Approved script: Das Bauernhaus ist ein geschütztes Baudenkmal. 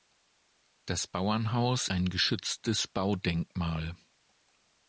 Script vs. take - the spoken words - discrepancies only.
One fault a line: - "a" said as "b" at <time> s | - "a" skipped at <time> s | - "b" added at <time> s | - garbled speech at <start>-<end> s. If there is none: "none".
- "ist" skipped at 1.9 s